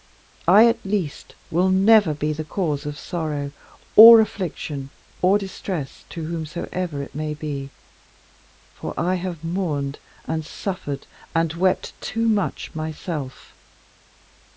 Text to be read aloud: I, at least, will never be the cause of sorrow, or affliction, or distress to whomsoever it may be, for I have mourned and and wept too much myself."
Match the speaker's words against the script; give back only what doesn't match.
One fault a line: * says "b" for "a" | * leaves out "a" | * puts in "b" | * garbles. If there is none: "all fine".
* puts in "suffered"